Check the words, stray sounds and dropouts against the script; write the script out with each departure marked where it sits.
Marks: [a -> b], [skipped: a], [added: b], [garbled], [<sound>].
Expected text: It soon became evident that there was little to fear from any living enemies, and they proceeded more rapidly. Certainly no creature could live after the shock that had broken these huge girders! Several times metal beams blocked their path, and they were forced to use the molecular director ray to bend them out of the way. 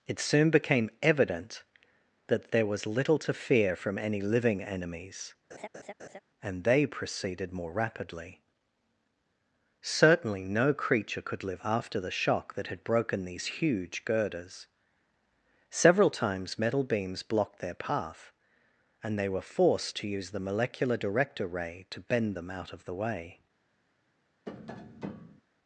It soon became evident that there was little to fear from any living enemies, [laugh] and they proceeded more rapidly. Certainly no creature could live after the shock that had broken these huge girders! Several times metal beams blocked their path, and they were forced to use the molecular director ray to bend them out of the way. [tap]